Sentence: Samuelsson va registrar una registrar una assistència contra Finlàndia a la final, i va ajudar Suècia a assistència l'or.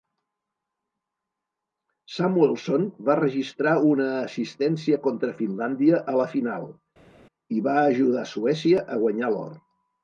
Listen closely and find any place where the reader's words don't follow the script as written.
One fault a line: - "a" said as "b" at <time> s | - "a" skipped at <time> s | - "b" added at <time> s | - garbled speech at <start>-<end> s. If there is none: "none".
- "registrar una" skipped at 4.1 s
- "assistència" said as "guanyar" at 9.0 s